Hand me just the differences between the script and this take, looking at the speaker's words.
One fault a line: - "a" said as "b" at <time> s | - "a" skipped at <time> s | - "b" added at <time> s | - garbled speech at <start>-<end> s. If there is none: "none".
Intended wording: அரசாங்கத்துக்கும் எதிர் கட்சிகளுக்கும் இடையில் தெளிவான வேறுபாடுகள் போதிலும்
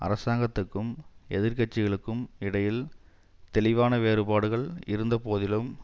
- "இருந்த" added at 4.8 s